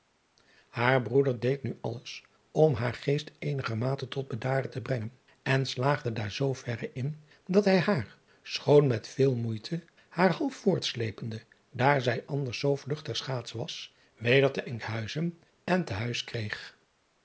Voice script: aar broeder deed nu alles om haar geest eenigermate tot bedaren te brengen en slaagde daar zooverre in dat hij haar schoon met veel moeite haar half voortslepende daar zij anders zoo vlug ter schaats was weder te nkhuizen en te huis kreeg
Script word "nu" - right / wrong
right